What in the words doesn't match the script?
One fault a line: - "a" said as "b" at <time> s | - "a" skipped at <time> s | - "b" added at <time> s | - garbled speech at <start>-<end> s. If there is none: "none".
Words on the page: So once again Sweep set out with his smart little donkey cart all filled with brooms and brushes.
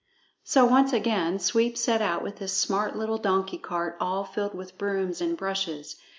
none